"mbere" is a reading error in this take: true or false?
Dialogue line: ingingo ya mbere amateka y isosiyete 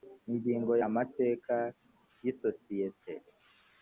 true